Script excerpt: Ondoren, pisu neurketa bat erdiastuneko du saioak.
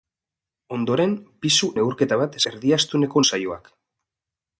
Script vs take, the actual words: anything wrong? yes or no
no